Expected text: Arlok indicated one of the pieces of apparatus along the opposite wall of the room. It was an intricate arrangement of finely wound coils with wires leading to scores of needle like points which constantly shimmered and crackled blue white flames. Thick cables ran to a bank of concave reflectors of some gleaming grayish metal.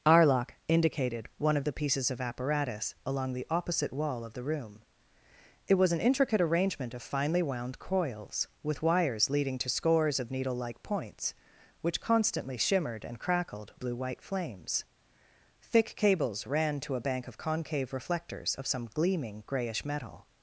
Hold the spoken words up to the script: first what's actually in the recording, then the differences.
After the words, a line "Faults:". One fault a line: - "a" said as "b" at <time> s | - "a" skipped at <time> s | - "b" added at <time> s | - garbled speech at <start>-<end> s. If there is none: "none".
Arlok indicated one of the pieces of apparatus along the opposite wall of the room. It was an intricate arrangement of finely wound coils with wires leading to scores of needle like points which constantly shimmered and crackled blue white flames. Thick cables ran to a bank of concave reflectors of some gleaming grayish metal.
Faults:
none